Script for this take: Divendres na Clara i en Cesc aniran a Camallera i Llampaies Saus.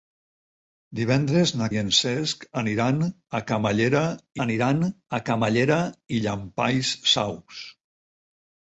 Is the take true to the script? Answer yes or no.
no